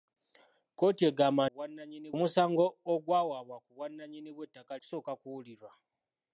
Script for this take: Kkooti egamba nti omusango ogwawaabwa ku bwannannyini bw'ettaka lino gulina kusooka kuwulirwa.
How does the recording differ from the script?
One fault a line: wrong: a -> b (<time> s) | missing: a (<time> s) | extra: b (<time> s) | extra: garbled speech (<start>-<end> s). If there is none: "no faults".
wrong: nti -> bwannannyini (1.5 s)
missing: lino gulina (4.7 s)